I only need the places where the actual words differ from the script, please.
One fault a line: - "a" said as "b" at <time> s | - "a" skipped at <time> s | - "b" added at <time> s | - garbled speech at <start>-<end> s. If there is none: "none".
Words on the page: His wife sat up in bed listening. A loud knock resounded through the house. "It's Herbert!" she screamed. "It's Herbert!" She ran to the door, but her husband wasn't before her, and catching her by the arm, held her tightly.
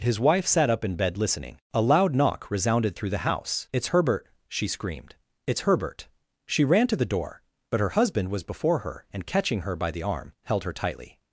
- "wasn't" said as "was" at 8.3 s